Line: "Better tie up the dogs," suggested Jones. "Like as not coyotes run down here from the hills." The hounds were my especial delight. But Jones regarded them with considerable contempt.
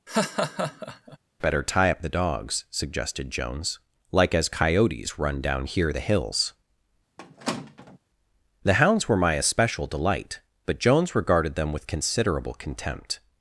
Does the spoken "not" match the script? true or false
false